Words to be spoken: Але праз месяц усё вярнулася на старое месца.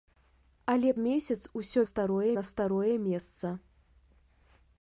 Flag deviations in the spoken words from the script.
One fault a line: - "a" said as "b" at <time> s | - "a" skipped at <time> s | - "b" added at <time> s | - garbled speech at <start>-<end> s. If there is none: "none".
- "праз" skipped at 0.9 s
- "вярнулася" said as "старое" at 1.9 s